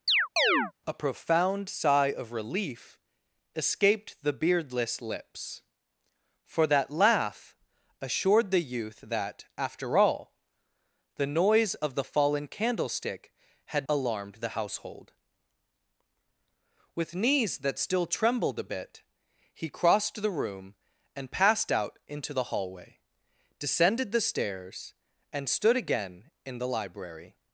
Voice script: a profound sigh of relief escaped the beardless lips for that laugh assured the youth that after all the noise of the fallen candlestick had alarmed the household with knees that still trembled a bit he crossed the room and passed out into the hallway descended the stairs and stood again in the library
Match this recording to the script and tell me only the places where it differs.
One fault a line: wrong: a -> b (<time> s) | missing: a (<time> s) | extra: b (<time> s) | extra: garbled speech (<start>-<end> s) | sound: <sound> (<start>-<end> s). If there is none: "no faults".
sound: chirp (0.1-0.7 s)